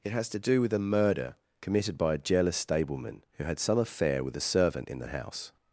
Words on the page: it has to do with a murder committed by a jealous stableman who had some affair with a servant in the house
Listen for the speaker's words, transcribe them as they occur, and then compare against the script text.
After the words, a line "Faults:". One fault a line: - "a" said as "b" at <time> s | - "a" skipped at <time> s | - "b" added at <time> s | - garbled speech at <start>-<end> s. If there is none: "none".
it has to do with a murder committed by a jealous stableman who had some affair with a servant in the house
Faults:
none